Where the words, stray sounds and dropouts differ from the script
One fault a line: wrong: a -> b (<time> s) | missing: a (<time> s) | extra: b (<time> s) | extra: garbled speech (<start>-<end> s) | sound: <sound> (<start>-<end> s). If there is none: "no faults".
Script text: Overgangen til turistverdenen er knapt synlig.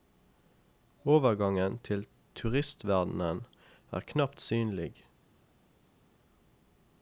no faults